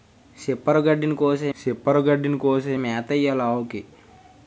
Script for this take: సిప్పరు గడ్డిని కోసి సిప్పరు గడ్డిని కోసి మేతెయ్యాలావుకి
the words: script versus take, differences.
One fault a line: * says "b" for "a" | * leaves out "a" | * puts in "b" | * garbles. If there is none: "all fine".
all fine